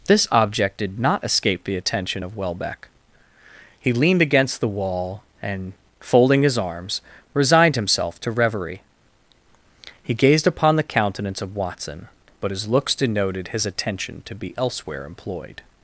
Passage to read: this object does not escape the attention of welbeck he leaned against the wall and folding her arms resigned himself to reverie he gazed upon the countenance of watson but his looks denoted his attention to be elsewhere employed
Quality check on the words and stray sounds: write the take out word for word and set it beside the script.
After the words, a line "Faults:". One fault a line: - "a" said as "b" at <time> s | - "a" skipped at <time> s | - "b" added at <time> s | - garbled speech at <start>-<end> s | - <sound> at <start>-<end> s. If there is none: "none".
this object did not escape the attention of welbeck he leaned against the wall and folding his arms resigned himself to reverie he gazed upon the countenance of watson but his looks denoted his attention to be elsewhere employed
Faults:
- "does" said as "did" at 0.8 s
- "her" said as "his" at 6.4 s